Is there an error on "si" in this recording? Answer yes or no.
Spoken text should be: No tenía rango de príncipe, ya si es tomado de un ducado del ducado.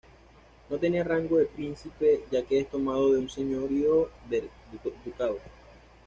yes